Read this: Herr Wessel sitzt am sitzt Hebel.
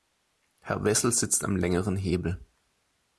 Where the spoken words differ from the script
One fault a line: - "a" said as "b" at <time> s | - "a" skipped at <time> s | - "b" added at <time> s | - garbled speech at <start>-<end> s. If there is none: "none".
- "sitzt" said as "längeren" at 1.6 s